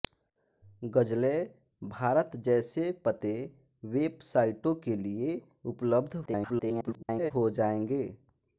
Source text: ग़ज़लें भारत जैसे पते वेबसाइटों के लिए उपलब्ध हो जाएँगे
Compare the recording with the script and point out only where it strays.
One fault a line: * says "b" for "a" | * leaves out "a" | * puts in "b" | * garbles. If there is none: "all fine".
* garbles